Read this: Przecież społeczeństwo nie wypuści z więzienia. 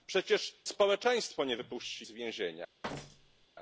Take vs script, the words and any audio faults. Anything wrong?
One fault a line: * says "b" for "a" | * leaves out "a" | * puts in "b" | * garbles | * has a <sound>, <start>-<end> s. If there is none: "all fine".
* has a thud, 2.8-3.5 s